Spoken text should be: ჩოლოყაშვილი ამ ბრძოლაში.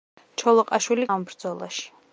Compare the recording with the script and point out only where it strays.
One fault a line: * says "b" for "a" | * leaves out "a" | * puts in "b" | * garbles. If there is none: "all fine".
all fine